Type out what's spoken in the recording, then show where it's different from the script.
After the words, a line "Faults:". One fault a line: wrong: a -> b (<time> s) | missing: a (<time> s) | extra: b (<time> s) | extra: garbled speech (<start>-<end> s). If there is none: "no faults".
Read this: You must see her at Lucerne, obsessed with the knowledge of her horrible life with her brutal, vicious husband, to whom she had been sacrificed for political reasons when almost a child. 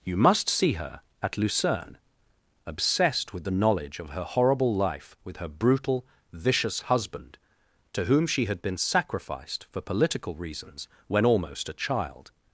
You must see her at Lucerne, obsessed with the knowledge of her horrible life with her brutal, vicious husband, to whom she had been sacrificed for political reasons when almost a child.
Faults:
no faults